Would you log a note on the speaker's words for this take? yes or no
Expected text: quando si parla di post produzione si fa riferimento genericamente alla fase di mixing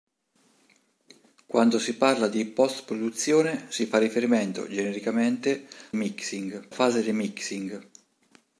yes